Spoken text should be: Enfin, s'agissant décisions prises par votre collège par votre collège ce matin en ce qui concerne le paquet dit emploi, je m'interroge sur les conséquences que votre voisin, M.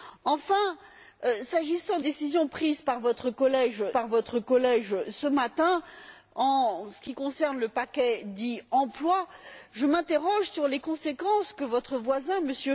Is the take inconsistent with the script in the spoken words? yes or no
no